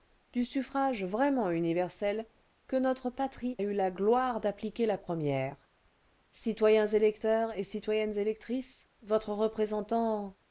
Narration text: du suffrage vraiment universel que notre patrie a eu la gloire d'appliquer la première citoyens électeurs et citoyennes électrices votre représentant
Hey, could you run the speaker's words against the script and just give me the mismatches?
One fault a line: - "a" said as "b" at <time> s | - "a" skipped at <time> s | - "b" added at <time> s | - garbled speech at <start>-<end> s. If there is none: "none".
- "a" skipped at 3.6 s